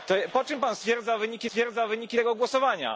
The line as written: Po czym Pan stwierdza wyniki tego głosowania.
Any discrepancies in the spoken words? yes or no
yes